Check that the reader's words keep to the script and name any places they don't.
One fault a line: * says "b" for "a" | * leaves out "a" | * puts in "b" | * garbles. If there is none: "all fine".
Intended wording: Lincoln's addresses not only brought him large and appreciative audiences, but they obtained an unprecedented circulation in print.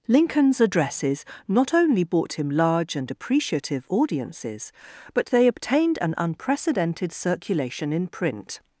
* says "bought" for "brought"